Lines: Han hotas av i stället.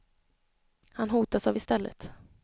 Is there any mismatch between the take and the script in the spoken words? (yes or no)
no